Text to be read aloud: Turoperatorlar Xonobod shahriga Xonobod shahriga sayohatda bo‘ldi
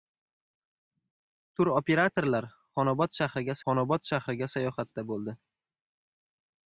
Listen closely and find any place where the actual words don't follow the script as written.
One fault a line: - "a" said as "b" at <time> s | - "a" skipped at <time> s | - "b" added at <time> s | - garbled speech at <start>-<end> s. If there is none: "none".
none